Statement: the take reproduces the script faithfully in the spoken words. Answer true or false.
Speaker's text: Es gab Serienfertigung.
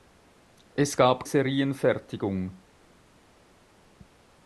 true